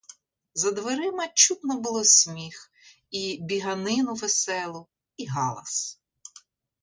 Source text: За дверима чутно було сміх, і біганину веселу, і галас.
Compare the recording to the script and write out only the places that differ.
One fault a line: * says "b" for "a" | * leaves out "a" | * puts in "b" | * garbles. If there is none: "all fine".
all fine